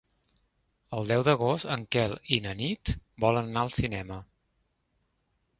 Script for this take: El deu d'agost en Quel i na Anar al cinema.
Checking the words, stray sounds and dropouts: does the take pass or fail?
fail